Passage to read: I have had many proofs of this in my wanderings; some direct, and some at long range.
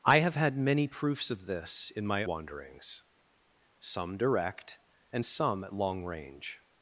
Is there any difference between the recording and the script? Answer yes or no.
no